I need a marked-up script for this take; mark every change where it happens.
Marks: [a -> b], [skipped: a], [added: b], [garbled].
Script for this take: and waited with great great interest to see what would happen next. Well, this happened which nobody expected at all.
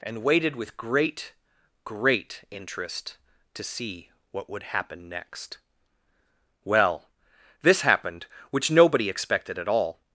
and waited with great great interest to see what would happen next. Well, this happened which nobody expected at all.